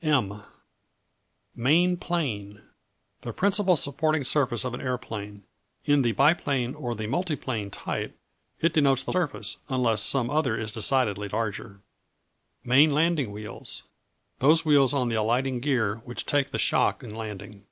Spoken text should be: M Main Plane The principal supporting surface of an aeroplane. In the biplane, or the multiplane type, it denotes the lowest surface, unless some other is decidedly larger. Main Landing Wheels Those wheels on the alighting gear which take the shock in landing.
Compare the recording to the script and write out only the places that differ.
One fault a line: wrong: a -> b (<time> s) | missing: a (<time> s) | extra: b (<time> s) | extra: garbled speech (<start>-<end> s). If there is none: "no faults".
missing: lowest (9.1 s)